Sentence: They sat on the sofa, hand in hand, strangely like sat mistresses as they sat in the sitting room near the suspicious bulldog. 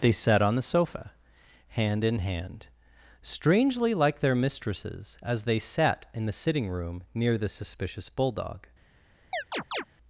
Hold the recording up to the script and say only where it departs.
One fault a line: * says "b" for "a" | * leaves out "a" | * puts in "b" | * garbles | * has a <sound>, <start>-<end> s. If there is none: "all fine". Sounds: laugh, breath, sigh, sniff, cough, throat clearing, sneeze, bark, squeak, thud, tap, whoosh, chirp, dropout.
* says "their" for "sat"
* has a chirp, 9.3-9.8 s